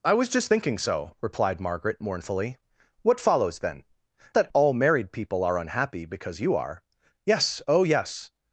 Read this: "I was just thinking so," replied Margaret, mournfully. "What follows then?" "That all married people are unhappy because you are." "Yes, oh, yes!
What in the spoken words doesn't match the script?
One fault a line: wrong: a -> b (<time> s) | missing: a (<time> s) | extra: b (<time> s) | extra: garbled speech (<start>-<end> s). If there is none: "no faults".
no faults